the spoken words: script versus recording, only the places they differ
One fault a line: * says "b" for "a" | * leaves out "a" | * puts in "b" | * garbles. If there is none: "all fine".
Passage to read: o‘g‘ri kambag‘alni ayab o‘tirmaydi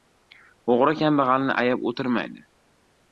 all fine